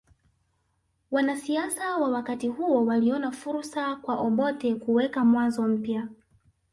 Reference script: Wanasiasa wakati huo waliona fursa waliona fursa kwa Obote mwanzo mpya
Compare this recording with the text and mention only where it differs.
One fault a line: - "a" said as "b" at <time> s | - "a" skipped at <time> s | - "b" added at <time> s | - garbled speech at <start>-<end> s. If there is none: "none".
- "wa" added at 2.0 s
- "waliona fursa" skipped at 4.0 s
- "kuweka" added at 4.7 s